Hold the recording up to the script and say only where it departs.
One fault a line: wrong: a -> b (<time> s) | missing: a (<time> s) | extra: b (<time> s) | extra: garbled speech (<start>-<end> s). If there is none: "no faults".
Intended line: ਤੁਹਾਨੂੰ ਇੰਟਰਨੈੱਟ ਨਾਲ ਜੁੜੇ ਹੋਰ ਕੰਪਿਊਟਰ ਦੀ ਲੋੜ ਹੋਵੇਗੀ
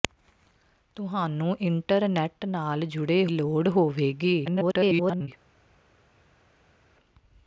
missing: ਹੋਰ ਕੰਪਿਊਟਰ ਦੀ (3.2 s)
extra: garbled speech (4.5-5.3 s)